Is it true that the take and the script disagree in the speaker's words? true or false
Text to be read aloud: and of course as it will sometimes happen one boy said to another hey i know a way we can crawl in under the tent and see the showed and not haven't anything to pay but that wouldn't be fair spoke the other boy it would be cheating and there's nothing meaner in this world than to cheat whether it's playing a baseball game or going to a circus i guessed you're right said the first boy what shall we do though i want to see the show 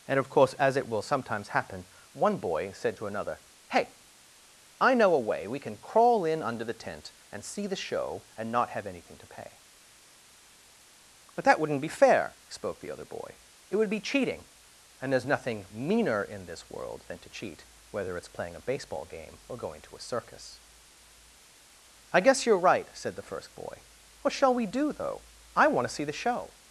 true